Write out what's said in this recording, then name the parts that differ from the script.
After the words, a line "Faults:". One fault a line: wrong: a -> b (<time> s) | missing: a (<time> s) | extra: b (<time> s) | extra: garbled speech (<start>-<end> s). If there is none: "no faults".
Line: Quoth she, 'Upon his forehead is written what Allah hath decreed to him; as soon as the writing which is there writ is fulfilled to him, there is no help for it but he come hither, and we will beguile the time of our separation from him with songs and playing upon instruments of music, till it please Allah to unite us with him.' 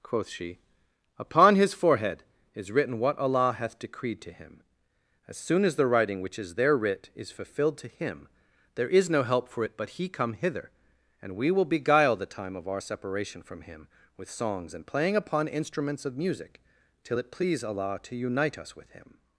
Quoth she, 'Upon his forehead is written what Allah hath decreed to him; as soon as the writing which is there writ is fulfilled to him, there is no help for it but he come hither, and we will beguile the time of our separation from him with songs and playing upon instruments of music, till it please Allah to unite us with him.'
Faults:
no faults